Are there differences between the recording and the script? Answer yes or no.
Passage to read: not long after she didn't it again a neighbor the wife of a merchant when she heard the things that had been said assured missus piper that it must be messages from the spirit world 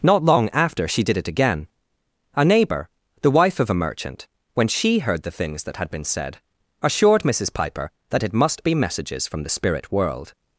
yes